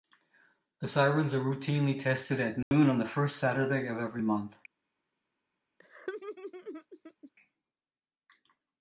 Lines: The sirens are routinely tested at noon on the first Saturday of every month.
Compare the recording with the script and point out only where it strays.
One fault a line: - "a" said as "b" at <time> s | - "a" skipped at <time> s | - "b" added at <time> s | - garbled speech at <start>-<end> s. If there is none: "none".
none